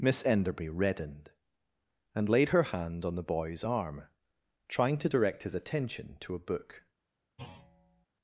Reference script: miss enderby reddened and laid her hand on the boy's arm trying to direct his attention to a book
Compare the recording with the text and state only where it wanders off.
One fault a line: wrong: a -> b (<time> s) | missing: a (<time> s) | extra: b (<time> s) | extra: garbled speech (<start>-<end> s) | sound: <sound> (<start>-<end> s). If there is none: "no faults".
sound: thud (7.4-8.1 s)